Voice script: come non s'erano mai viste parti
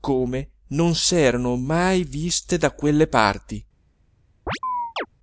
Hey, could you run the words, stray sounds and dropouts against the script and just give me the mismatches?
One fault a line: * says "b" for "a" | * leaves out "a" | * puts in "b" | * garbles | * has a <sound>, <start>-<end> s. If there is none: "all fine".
* puts in "da quelle"
* has a chirp, 4.5-5.1 s